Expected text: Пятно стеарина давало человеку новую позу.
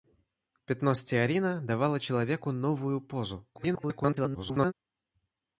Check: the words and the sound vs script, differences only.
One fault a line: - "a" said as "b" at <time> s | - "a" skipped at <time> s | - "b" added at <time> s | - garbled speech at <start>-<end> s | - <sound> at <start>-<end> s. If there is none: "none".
- garbled speech at 3.5-4.7 s